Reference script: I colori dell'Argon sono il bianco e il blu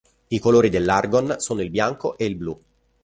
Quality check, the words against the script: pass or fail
pass